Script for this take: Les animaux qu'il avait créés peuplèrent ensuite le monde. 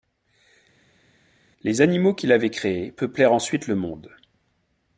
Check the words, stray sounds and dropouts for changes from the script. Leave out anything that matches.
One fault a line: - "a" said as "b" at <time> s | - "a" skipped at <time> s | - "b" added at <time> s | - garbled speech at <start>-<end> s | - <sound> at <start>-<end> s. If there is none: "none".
none